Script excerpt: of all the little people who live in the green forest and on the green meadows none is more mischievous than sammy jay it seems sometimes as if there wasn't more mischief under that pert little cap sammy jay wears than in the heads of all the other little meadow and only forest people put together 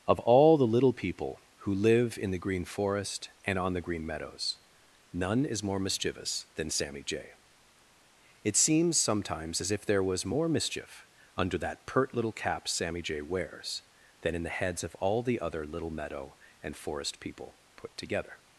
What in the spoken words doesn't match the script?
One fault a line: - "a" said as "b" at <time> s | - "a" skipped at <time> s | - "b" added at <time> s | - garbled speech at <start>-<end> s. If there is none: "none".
- "wasn't" said as "was" at 10.0 s
- "only" skipped at 16.7 s